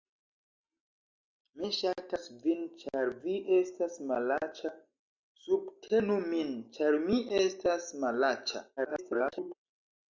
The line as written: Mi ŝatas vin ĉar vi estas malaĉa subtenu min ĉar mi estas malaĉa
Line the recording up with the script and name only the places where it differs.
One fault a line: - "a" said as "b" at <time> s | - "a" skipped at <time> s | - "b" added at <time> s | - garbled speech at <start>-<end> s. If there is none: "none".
- garbled speech at 8.8-9.5 s